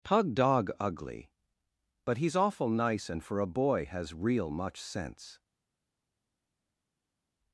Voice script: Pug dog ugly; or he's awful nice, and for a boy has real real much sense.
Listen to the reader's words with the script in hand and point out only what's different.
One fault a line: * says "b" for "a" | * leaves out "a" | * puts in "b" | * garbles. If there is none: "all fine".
* says "but" for "or"
* leaves out "real"